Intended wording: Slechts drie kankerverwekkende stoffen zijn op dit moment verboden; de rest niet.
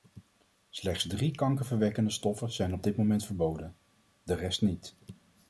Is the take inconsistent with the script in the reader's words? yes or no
no